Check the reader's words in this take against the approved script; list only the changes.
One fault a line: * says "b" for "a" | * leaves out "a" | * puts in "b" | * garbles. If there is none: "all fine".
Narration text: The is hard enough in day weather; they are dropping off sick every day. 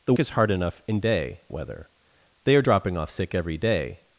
all fine